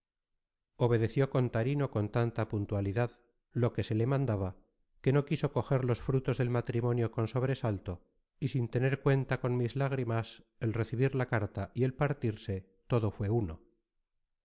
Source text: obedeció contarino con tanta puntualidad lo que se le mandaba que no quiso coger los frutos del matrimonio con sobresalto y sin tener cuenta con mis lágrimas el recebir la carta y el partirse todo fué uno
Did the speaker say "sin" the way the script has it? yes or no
yes